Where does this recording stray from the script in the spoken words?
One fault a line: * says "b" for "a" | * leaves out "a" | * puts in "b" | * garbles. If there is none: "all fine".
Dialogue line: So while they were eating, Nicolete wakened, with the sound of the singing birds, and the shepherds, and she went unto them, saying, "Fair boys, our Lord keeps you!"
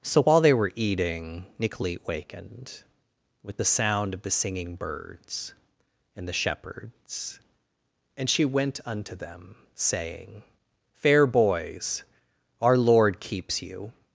all fine